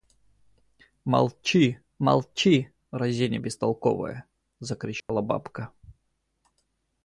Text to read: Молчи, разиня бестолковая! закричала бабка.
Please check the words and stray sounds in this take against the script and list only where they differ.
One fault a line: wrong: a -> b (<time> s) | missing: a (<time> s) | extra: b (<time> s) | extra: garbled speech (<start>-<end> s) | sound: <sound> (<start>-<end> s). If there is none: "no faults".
extra: молчи (2.0 s)
sound: dropout (5.0-5.1 s)